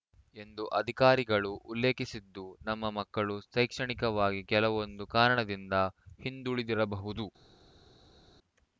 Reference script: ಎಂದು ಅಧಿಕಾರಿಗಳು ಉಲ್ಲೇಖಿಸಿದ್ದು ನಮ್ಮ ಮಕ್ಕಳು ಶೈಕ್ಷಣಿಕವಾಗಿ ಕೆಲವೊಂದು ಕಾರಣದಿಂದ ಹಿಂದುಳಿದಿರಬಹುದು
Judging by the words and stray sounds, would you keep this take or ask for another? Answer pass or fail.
pass